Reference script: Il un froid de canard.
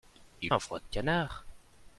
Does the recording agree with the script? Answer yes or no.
yes